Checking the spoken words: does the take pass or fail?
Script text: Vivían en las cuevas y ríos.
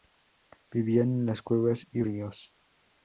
pass